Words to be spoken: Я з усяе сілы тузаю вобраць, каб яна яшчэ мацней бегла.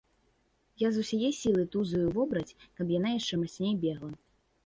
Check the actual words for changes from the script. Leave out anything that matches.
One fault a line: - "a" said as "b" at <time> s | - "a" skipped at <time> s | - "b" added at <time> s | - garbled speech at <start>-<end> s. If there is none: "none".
none